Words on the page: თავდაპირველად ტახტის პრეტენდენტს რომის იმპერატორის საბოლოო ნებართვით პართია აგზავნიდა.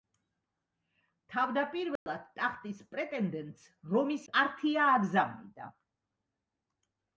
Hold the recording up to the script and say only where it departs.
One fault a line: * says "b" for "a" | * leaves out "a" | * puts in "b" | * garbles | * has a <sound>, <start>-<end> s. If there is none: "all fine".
* has a dropout, 2.0-2.1 s
* leaves out "იმპერატორის საბოლოო ნებართვით"